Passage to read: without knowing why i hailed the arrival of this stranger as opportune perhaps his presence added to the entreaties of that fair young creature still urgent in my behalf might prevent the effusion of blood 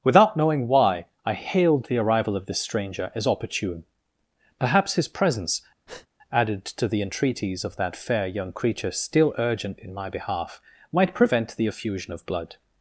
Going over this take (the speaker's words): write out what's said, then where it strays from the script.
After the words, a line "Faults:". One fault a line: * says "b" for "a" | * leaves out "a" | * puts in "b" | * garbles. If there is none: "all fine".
without knowing why i hailed the arrival of this stranger as opportune perhaps his presence added to the entreaties of that fair young creature still urgent in my behalf might prevent the effusion of blood
Faults:
all fine